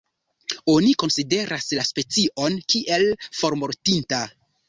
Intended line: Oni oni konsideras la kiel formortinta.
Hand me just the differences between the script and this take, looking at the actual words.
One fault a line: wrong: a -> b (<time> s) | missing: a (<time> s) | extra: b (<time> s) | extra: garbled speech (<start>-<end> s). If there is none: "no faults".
missing: oni (0.9 s)
extra: specion (1.9 s)